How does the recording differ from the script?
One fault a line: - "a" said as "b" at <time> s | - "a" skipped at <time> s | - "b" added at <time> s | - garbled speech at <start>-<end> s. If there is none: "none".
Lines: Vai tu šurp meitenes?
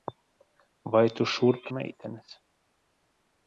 none